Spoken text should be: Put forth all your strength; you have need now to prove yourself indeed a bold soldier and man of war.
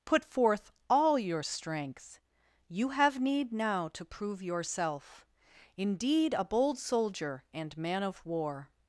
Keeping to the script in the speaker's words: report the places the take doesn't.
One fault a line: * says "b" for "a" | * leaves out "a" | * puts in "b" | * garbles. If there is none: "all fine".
all fine